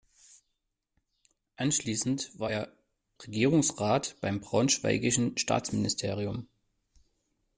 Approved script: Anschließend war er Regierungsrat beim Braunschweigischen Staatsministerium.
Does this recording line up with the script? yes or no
yes